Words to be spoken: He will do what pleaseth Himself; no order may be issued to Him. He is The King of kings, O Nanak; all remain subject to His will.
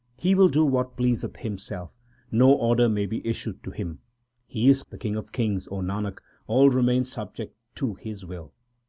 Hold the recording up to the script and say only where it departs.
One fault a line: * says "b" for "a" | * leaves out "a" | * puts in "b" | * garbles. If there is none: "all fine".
all fine